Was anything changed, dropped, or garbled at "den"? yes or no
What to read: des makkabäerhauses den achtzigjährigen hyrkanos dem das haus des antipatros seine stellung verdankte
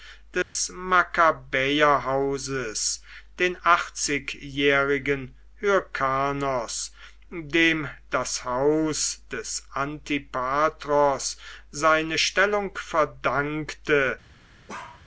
no